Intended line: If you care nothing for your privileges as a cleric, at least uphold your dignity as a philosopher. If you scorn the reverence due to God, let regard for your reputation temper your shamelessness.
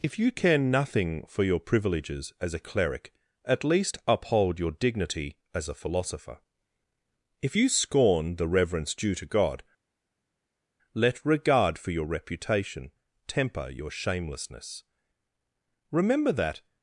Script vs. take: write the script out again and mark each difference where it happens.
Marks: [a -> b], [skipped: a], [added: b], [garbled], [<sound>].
If you care nothing for your privileges as a cleric, at least uphold your dignity as a philosopher. If you scorn the reverence due to God, let regard for your reputation temper your shamelessness. [added: Remember that]